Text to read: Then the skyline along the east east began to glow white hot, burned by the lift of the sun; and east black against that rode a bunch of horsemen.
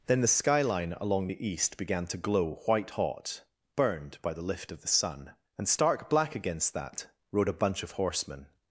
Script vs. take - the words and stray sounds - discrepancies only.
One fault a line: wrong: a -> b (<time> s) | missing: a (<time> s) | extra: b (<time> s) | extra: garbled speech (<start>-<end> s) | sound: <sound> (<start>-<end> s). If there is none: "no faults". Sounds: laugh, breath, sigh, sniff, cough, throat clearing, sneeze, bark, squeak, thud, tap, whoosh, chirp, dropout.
missing: east (1.8 s)
wrong: east -> stark (5.7 s)